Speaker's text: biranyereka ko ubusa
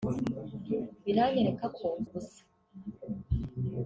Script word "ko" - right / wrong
right